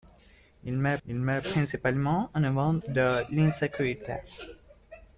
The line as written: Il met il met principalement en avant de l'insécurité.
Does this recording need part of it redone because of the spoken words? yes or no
no